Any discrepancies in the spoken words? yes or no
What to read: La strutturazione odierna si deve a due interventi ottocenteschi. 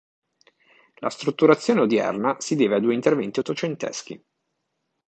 no